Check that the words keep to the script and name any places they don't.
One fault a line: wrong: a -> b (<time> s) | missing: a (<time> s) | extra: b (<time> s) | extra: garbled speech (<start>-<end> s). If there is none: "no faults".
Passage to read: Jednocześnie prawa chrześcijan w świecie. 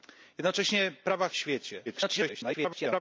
missing: chrześcijan (1.3 s)
extra: garbled speech (1.9-3.0 s)